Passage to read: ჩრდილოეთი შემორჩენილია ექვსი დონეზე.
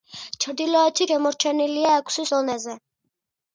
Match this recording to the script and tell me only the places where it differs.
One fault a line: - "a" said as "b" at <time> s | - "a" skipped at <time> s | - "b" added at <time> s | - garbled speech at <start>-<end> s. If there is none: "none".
none